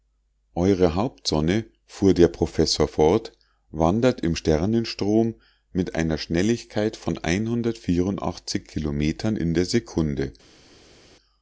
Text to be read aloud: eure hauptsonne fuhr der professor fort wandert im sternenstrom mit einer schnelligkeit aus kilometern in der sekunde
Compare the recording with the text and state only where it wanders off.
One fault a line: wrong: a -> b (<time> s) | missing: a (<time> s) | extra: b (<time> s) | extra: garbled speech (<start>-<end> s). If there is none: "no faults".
wrong: aus -> von (7.0 s)